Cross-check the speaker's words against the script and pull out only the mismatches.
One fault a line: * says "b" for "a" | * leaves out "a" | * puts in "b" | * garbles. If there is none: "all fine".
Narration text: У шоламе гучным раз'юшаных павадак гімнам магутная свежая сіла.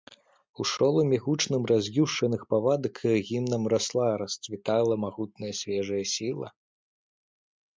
* puts in "расла расцвітала"